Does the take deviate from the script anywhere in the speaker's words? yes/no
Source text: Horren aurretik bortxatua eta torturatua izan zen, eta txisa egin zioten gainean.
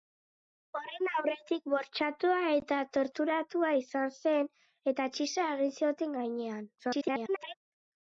yes